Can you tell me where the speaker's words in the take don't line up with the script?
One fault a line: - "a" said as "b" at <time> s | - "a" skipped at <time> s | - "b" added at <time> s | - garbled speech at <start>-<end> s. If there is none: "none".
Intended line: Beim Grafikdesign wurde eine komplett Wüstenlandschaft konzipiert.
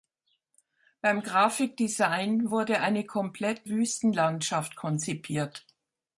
none